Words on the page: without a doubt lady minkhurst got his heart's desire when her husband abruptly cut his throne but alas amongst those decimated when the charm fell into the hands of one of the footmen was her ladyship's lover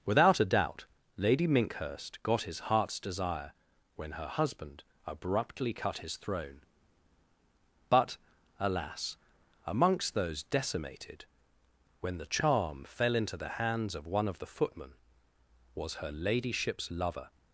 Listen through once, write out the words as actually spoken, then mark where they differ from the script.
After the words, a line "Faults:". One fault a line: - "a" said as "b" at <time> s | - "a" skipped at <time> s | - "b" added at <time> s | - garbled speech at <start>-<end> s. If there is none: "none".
without a doubt lady minkhurst got his heart's desire when her husband abruptly cut his throne but alas amongst those decimated when the charm fell into the hands of one of the footmen was her ladyship's lover
Faults:
none